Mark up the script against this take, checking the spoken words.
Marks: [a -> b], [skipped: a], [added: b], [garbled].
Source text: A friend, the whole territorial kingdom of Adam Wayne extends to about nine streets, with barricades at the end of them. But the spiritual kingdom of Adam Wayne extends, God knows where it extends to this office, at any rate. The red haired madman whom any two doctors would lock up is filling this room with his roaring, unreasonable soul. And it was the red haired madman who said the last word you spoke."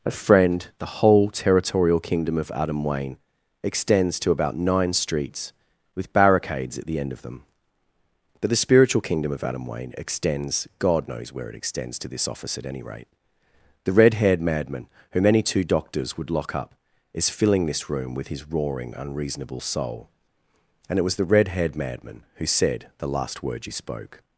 A friend, the whole territorial kingdom of Adam Wayne extends to about nine streets, with barricades at the end of them. But the spiritual kingdom of Adam Wayne extends, God knows where it extends to this office, at any rate. The red haired madman whom any two doctors would lock up is filling this room with his roaring, unreasonable soul. And it was the red haired madman who said the last word you spoke."